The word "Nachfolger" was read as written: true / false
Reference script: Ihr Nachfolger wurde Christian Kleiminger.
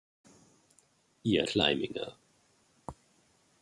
false